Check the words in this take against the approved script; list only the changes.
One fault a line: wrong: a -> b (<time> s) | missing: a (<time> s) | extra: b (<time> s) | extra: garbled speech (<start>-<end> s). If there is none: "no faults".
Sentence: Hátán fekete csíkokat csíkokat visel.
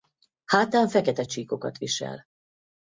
missing: csíkokat (1.8 s)